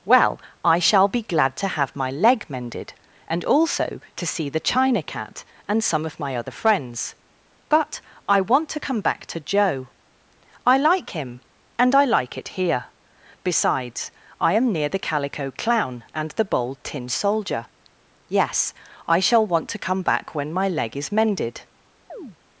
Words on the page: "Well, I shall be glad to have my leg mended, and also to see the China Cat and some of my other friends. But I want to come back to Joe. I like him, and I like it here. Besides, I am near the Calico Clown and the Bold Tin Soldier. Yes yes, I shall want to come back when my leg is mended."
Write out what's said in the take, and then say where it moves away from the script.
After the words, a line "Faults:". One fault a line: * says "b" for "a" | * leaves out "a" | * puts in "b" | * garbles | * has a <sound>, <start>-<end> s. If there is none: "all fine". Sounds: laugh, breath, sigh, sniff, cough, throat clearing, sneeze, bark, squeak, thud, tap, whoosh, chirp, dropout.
"Well, I shall be glad to have my leg mended, and also to see the China Cat and some of my other friends. But I want to come back to Joe. I like him, and I like it here. Besides, I am near the Calico Clown and the Bold Tin Soldier. Yes, I shall want to come back when my leg is mended."
Faults:
* leaves out "yes"
* has a chirp, 22.1-22.4 s